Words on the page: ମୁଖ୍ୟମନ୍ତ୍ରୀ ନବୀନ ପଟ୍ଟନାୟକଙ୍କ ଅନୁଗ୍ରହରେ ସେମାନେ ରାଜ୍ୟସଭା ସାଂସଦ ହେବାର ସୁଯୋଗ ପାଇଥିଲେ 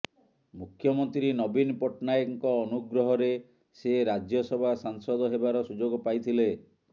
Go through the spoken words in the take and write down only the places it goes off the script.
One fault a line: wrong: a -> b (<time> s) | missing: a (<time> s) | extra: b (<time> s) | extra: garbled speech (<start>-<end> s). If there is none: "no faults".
wrong: ସେମାନେ -> ସେ (3.8 s)